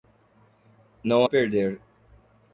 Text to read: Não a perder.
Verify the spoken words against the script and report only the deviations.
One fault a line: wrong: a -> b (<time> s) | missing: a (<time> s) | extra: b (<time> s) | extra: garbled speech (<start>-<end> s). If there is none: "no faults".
no faults